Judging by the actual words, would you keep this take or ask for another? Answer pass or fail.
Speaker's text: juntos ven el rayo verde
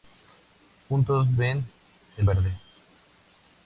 fail